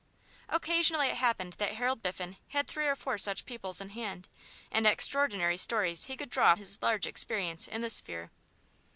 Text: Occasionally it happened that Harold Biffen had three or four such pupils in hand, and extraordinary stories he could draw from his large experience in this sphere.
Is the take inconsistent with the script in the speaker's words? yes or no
yes